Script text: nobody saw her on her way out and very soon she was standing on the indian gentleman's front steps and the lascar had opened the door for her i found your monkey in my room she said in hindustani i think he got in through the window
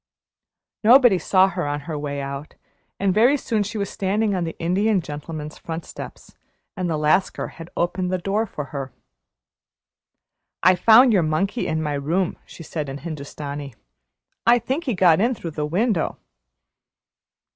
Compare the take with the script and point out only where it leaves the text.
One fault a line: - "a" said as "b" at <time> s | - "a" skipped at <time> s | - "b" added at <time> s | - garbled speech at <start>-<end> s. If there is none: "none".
none